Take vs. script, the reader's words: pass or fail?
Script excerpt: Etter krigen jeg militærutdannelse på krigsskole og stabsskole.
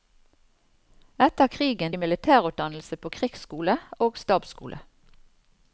pass